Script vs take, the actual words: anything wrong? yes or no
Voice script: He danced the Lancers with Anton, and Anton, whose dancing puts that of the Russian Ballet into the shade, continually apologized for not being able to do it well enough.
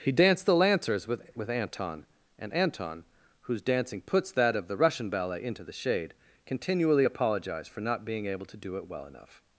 yes